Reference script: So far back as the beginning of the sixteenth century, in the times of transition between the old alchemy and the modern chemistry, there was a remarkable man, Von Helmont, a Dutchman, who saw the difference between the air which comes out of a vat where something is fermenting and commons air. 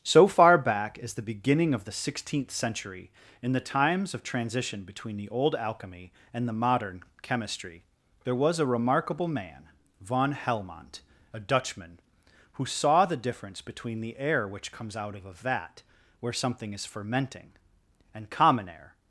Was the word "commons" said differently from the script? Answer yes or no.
yes